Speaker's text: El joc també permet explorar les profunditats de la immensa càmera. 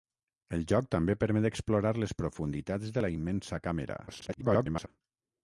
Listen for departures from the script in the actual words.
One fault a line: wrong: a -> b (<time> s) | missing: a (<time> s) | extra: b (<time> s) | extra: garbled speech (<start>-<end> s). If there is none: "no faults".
extra: garbled speech (4.1-4.9 s)